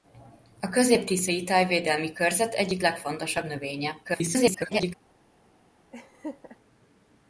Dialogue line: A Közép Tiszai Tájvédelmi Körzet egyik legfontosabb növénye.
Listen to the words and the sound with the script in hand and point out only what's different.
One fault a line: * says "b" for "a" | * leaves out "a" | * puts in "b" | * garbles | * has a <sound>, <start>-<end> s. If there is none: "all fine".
* garbles
* has a laugh, 5.9-6.6 s